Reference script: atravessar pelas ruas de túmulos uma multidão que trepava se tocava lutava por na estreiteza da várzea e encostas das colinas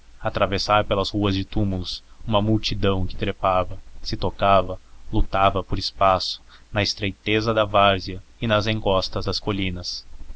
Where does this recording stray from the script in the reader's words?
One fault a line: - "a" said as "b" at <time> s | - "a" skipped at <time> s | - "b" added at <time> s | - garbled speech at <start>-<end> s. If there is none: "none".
- "espaço" added at 5.8 s
- "nas" added at 8.5 s